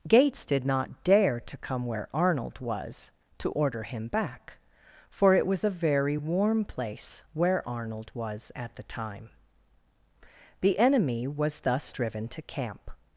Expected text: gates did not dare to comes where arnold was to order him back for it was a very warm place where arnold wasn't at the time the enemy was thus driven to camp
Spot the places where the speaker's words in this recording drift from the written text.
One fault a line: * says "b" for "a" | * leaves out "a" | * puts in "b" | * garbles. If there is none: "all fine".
* says "come" for "comes"
* says "was" for "wasn't"